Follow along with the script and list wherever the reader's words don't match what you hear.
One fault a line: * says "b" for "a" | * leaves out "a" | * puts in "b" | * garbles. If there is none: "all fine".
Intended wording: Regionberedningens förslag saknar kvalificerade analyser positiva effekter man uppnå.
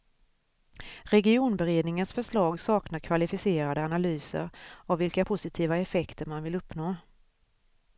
* puts in "av vilka"
* puts in "vill"